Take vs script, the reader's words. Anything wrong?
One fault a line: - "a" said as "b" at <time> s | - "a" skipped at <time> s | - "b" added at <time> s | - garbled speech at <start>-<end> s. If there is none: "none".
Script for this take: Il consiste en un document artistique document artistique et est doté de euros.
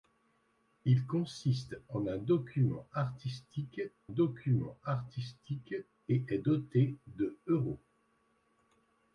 none